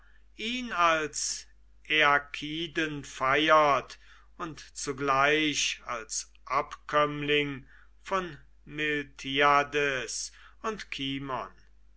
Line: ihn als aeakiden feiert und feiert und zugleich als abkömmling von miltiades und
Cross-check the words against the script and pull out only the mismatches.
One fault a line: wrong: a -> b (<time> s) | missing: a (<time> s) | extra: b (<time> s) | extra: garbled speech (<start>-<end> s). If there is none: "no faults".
missing: feiert und (4.6 s)